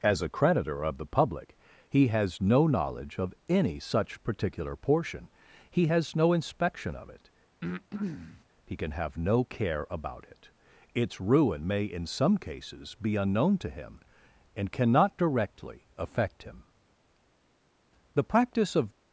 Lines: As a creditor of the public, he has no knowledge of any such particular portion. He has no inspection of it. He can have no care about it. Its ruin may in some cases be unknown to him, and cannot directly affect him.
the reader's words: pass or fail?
fail